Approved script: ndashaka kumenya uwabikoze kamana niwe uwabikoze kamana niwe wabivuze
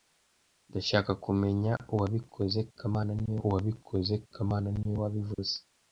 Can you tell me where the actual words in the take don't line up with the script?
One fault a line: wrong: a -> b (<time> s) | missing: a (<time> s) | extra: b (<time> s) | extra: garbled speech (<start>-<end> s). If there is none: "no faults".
no faults